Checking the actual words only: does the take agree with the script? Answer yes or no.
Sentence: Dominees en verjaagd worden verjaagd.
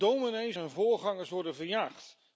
no